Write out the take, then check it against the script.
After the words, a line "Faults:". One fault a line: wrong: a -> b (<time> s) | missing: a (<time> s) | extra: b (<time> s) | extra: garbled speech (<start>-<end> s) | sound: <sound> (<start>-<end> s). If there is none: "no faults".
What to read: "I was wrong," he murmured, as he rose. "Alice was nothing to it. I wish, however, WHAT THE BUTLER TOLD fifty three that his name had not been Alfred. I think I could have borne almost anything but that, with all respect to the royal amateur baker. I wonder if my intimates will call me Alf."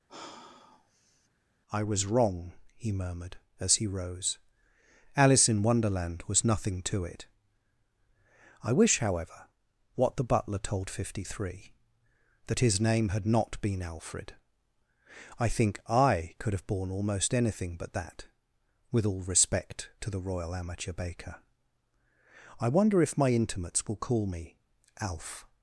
"I was wrong," he murmured, as he rose. "Alice in Wonderland was nothing to it. I wish, however, WHAT THE BUTLER TOLD fifty three that his name had not been Alfred. I think I could have borne almost anything but that, with all respect to the royal amateur baker. I wonder if my intimates will call me Alf."
Faults:
sound: sigh (0.1-1.3 s)
extra: in Wonderland (5.5 s)